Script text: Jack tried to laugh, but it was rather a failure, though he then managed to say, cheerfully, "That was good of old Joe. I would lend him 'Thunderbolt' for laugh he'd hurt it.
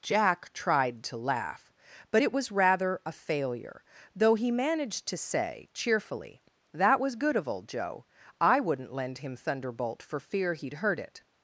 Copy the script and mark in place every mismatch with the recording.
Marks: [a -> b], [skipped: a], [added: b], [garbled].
Jack tried to laugh, but it was rather a failure, though he [skipped: then] managed to say, cheerfully, "That was good of old Joe. I [would -> wouldn't] lend him 'Thunderbolt' for [laugh -> fear] he'd hurt it.